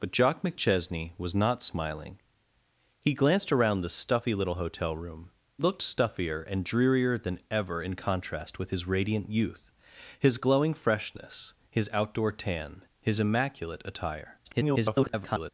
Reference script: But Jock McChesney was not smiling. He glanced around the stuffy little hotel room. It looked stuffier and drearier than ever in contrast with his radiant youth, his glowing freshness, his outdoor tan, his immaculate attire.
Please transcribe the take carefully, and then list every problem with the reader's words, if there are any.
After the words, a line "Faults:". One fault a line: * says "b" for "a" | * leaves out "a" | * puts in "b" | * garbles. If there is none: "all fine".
But Jock McChesney was not smiling. He glanced around the stuffy little hotel room. Looked stuffier and drearier than ever in contrast with his radiant youth, his glowing freshness, his outdoor tan, his immaculate attire. [garbled]
Faults:
* leaves out "It"
* garbles